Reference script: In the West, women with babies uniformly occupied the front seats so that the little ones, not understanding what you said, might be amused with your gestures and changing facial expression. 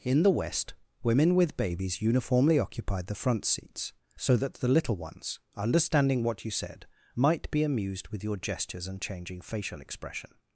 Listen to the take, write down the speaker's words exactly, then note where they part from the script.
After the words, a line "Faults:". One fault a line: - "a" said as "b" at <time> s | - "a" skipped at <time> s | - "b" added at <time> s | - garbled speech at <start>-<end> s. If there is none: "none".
In the West, women with babies uniformly occupied the front seats so that the little ones, understanding what you said, might be amused with your gestures and changing facial expression.
Faults:
- "not" skipped at 5.4 s